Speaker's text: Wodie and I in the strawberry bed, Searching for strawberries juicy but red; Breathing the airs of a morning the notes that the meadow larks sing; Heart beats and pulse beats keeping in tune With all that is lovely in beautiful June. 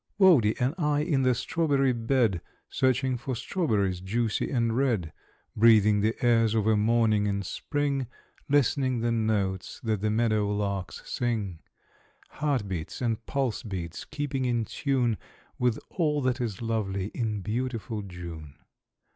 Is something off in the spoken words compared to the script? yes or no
yes